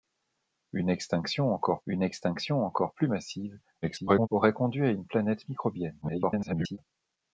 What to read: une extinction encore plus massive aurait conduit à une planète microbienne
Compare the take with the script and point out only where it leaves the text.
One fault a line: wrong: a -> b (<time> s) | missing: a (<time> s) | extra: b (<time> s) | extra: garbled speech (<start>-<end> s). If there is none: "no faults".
extra: une extinction encore (1.9 s)
extra: garbled speech (3.8-4.3 s)
extra: garbled speech (6.0-6.8 s)